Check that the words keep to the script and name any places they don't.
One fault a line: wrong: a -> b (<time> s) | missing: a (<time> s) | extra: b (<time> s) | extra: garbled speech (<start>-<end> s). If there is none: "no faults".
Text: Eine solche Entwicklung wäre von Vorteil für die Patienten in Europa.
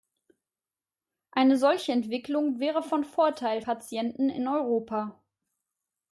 missing: für die (3.6 s)